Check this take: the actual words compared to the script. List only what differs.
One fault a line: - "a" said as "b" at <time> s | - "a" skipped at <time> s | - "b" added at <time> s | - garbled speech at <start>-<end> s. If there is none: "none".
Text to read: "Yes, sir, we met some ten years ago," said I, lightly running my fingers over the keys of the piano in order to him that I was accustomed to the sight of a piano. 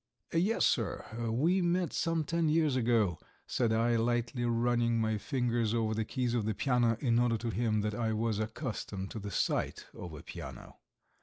none